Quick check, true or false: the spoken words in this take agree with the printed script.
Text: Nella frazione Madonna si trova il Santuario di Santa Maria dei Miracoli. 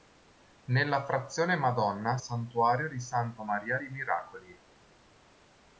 false